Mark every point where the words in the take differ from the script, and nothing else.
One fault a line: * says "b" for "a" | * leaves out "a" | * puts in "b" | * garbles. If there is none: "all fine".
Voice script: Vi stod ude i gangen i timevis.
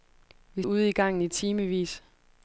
* leaves out "stod"